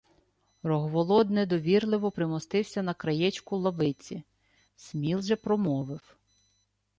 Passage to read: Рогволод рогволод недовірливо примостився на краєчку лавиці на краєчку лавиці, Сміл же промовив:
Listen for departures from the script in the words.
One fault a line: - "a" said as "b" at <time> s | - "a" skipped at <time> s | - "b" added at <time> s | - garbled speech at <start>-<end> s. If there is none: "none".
- "рогволод" skipped at 1.3 s
- "на краєчку лавиці" skipped at 4.2 s